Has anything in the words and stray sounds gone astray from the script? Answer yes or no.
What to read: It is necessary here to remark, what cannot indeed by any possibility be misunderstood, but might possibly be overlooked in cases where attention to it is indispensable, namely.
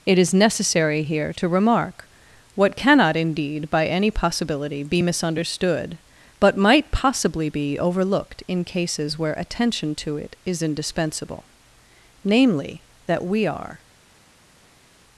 yes